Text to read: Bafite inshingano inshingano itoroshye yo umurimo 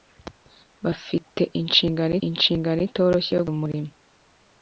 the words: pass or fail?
pass